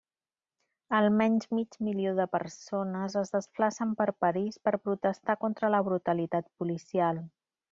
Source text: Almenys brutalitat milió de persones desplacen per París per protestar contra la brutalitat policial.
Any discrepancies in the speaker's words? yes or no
yes